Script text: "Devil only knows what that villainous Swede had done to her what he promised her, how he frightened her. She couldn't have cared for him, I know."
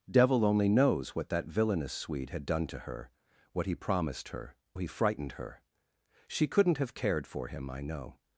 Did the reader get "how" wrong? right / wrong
wrong